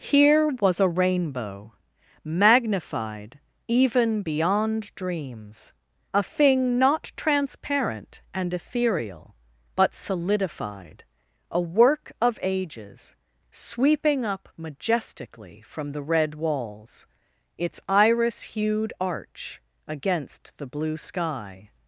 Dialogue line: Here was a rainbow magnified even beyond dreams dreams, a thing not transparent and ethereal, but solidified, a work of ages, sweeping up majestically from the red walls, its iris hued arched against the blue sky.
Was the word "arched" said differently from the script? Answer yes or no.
yes